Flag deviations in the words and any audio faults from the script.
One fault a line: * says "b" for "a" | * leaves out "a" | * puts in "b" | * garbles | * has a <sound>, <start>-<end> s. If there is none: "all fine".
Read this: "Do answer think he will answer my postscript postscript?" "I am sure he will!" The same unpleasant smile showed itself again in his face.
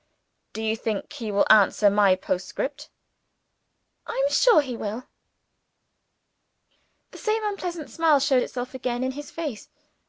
* says "you" for "answer"
* leaves out "postscript"